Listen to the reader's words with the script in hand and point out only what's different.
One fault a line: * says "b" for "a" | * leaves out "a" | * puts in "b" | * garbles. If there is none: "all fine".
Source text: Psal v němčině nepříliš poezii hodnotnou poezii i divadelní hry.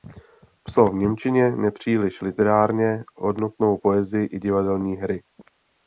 * says "literárně" for "poezii"